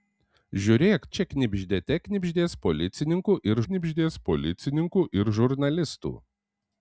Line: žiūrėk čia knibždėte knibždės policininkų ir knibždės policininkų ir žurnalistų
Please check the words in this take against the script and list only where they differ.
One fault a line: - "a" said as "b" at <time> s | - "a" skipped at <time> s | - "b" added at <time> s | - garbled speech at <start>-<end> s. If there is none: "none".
none